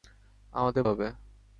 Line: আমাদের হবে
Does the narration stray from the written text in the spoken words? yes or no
no